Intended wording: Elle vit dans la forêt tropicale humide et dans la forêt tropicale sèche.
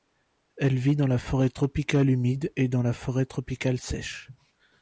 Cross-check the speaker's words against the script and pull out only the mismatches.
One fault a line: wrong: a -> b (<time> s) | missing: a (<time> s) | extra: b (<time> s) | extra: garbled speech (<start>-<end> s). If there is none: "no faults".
no faults